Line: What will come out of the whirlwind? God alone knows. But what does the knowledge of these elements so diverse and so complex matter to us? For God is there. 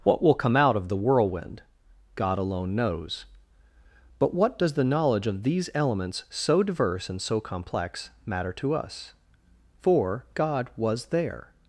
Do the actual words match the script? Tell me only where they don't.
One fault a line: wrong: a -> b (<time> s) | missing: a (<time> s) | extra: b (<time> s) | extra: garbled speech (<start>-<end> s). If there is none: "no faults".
wrong: is -> was (10.8 s)